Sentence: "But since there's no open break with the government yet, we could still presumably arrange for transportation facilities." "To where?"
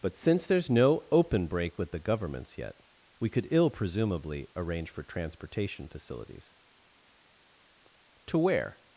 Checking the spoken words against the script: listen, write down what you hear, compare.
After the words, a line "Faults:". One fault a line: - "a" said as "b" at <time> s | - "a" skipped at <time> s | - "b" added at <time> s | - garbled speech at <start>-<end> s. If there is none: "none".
"But since there's no open break with the governments yet, we could ill presumably arrange for transportation facilities." "To where?"
Faults:
- "government" said as "governments" at 2.0 s
- "still" said as "ill" at 3.5 s